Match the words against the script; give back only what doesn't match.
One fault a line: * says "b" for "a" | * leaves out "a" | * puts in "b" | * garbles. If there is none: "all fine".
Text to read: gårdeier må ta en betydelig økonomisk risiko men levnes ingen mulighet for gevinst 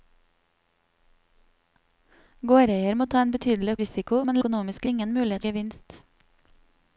* leaves out "økonomisk"
* says "økonomisk" for "levnes"
* leaves out "for"